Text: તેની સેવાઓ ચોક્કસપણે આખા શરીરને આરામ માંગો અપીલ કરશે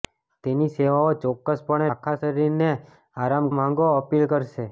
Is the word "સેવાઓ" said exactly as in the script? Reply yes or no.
yes